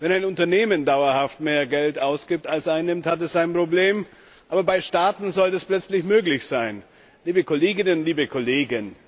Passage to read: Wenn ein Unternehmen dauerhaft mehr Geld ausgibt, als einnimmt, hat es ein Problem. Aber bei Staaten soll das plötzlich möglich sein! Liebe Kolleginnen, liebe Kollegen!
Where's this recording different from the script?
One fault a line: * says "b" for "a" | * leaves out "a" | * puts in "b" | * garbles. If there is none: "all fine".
all fine